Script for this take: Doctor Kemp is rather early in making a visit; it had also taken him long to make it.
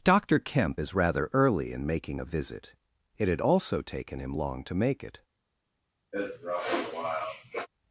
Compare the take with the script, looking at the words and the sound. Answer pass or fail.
fail